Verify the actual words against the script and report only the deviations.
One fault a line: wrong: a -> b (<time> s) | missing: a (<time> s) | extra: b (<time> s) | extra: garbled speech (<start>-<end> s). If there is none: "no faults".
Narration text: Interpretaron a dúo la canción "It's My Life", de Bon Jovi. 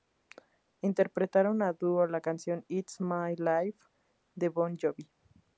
no faults